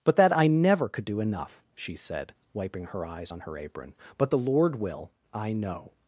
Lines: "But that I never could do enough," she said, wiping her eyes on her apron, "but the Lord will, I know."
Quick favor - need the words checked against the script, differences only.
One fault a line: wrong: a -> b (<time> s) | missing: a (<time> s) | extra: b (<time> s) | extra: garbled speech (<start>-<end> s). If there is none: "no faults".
no faults